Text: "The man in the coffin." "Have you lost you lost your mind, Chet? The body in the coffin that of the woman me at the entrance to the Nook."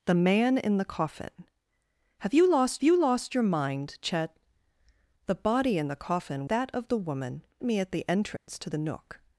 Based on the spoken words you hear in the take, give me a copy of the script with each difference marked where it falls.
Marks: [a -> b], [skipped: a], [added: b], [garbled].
"The man in the coffin." "Have you lost you lost your mind, Chet? The body in the coffin that of the woman me at the entrance to the Nook."